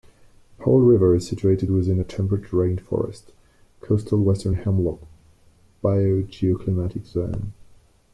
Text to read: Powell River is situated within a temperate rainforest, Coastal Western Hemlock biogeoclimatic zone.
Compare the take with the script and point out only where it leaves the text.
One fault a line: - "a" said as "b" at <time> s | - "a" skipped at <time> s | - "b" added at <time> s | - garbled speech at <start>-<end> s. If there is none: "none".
none